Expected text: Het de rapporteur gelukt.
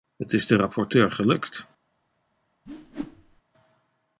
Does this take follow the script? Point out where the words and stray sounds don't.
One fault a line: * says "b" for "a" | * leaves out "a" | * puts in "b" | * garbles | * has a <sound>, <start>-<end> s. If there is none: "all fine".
* puts in "is"
* has a whoosh, 2.7-3.4 s